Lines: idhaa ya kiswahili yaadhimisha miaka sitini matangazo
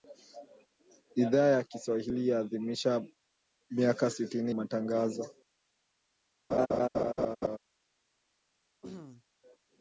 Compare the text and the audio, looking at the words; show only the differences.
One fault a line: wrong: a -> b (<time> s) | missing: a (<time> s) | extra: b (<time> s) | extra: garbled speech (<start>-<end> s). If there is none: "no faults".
no faults